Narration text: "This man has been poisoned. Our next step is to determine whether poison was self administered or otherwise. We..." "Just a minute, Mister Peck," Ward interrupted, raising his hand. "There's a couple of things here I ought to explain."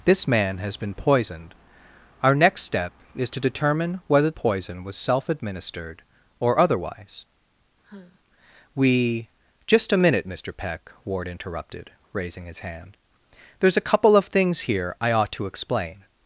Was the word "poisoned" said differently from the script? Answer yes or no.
no